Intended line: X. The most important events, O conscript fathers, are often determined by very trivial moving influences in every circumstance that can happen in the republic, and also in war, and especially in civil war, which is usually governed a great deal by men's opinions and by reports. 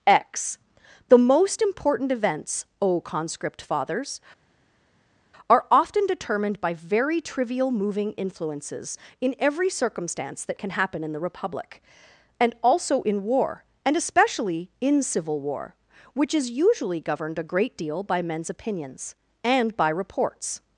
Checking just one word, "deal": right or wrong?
right